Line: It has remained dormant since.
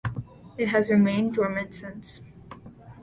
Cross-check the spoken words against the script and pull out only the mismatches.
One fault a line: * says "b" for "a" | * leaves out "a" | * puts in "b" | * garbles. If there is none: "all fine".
all fine